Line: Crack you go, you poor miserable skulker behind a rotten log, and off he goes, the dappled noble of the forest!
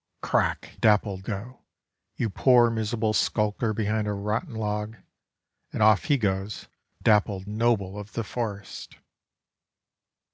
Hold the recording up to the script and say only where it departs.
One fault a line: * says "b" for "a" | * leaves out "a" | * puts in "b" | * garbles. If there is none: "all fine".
* says "dappled" for "you"
* leaves out "the"